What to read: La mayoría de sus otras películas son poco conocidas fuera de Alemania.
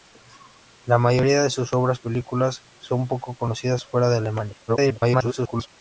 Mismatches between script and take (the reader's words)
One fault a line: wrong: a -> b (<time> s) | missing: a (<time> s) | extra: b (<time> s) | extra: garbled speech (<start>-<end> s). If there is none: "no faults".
extra: garbled speech (4.7-5.7 s)